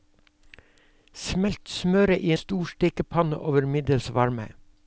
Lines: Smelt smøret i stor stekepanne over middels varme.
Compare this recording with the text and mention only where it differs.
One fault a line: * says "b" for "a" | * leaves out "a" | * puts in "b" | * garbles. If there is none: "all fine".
all fine